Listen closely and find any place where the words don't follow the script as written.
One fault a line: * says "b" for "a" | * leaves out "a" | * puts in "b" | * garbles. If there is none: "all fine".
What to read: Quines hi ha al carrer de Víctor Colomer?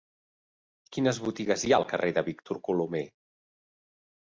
* puts in "botigues"